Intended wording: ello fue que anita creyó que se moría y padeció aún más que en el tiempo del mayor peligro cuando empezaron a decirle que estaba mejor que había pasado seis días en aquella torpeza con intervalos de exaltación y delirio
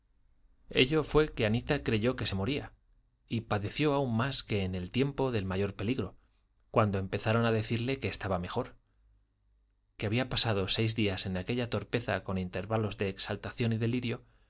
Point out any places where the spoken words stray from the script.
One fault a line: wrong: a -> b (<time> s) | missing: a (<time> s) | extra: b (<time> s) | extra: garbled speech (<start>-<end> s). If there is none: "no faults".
no faults